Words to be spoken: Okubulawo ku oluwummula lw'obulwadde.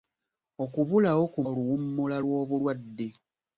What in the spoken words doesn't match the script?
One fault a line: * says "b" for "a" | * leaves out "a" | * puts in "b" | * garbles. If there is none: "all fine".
all fine